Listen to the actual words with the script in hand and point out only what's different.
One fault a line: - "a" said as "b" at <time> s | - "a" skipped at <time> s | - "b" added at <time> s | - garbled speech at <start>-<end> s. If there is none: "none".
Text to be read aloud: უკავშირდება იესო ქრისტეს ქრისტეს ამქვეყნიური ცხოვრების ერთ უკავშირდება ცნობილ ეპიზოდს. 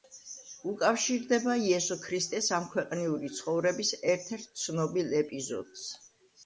- "ქრისტეს" skipped at 2.5 s
- "უკავშირდება" said as "ერთ" at 4.4 s